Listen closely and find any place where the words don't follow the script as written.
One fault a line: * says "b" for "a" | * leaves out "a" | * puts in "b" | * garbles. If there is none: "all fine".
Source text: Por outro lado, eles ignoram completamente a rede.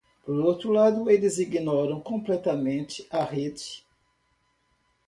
all fine